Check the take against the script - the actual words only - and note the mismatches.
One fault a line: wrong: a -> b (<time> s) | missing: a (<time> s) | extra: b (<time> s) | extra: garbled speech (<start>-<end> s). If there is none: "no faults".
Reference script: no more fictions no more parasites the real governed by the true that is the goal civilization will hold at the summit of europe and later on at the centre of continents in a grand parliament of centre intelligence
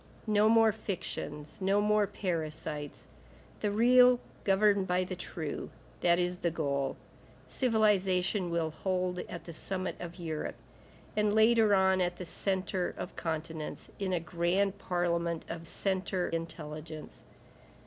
no faults